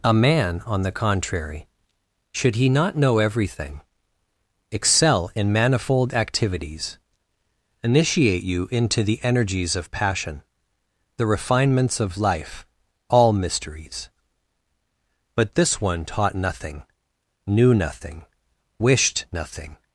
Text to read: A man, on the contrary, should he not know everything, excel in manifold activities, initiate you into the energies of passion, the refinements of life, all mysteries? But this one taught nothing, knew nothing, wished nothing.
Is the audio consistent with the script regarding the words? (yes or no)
yes